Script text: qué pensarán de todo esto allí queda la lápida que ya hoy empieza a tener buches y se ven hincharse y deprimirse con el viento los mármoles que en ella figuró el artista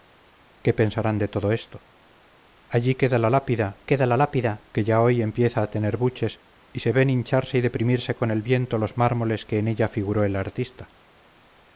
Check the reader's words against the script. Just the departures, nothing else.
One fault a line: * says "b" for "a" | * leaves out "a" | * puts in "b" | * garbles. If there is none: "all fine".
* puts in "queda la lápida"